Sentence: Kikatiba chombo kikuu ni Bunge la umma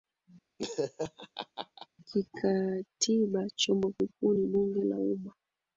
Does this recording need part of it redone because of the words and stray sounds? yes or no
yes